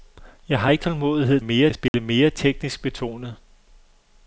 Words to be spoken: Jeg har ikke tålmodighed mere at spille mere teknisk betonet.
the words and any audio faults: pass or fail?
fail